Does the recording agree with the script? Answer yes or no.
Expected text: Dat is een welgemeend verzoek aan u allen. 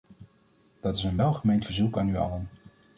yes